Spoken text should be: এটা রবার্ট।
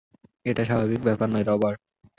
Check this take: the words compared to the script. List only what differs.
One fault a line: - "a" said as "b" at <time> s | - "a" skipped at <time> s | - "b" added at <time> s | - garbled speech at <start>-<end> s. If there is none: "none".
- "স্বাভাবিক ব্যাপার নয়" added at 0.7 s